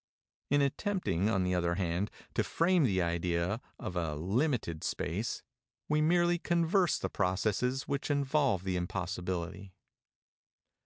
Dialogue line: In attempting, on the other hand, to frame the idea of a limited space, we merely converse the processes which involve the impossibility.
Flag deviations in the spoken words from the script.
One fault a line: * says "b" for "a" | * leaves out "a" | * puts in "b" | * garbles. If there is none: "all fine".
all fine